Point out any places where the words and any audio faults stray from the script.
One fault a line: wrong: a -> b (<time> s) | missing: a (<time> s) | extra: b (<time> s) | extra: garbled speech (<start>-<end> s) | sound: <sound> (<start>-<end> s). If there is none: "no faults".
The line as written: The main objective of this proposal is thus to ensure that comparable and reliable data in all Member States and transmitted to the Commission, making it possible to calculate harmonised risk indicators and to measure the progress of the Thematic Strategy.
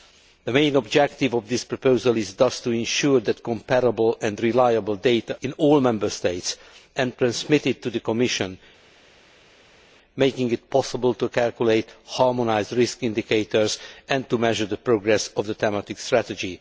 no faults